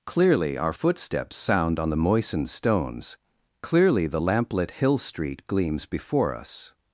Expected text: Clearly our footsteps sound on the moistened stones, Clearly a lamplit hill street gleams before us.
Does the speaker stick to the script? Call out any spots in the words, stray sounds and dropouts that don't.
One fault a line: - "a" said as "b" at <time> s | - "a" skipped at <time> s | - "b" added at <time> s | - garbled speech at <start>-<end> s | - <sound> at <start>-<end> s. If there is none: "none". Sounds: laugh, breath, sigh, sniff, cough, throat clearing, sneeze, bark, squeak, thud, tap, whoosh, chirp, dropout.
- "a" said as "the" at 4.0 s